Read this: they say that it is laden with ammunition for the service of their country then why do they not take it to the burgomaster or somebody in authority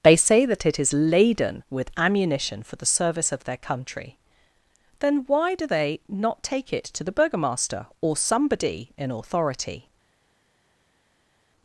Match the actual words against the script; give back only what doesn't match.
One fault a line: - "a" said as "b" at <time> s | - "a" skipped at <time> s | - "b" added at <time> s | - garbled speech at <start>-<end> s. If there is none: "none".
none